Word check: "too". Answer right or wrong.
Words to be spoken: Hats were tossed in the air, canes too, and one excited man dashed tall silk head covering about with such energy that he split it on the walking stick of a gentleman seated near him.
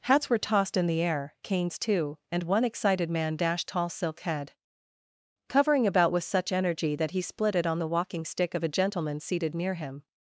right